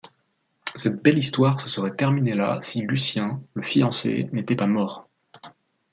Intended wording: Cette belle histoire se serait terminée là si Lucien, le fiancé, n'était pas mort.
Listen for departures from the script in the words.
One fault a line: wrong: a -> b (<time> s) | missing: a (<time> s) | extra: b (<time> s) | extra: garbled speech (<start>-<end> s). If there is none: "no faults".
no faults